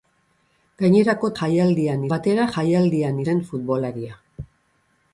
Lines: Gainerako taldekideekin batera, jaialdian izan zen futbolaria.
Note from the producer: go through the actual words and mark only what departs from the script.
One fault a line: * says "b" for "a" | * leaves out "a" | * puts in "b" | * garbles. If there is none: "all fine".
* says "jaialdian" for "taldekideekin"
* leaves out "izan"